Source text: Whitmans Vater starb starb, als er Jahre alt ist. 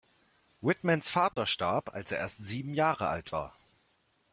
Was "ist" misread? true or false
true